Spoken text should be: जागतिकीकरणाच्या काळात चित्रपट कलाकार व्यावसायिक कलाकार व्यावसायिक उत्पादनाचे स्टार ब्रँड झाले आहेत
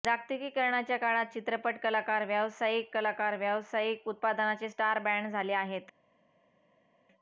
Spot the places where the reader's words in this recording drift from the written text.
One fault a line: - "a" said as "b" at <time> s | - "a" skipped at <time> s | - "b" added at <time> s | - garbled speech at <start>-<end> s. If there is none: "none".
none